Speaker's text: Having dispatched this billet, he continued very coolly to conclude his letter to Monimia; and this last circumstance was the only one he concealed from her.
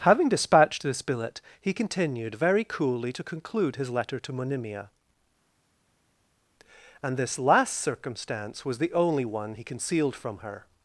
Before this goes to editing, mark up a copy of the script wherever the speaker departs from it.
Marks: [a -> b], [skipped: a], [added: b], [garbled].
Having dispatched this billet, he continued very coolly to conclude his letter to Monimia; and this last circumstance was the only one he concealed from her.